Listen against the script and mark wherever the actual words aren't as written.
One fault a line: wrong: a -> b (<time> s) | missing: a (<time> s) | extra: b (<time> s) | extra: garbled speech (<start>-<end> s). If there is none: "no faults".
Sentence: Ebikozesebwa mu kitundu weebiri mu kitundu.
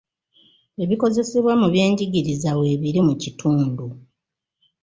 wrong: kitundu -> byenjigiriza (1.7 s)